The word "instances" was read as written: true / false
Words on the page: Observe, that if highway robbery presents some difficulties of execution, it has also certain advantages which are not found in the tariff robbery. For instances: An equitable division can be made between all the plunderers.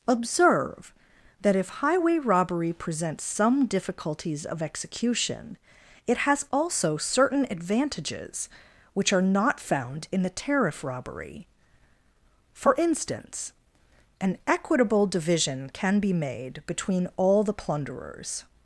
false